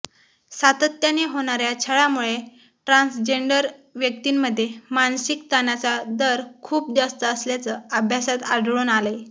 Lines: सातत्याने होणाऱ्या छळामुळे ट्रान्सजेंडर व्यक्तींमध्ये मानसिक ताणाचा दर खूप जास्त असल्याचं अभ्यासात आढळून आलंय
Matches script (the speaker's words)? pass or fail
pass